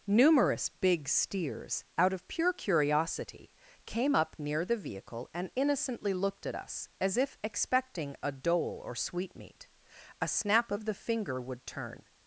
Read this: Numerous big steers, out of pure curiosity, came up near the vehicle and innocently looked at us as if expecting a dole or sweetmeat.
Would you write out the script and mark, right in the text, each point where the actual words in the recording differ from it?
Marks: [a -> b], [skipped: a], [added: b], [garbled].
Numerous big steers, out of pure curiosity, came up near the vehicle and innocently looked at us as if expecting a dole or sweetmeat. [added: A snap of the finger would turn]